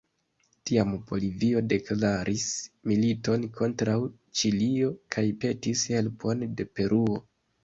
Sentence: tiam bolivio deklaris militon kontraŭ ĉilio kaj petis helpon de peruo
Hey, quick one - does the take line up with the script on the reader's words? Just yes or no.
yes